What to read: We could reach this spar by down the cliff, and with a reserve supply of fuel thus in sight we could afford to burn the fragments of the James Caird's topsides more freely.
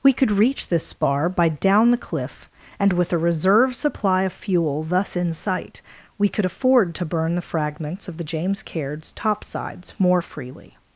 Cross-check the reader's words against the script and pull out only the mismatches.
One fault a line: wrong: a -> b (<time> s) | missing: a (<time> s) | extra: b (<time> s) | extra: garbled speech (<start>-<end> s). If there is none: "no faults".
no faults